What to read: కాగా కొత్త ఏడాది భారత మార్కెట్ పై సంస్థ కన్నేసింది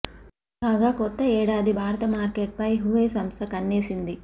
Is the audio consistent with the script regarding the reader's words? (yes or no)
no